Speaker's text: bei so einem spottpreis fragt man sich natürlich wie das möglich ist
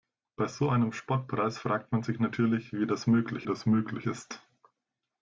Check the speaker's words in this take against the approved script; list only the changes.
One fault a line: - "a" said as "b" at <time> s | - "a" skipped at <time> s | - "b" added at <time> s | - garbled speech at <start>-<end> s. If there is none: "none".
- "das möglich" added at 3.5 s